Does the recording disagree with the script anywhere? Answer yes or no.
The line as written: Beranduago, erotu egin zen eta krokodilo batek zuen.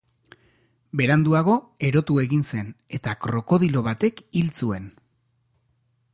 yes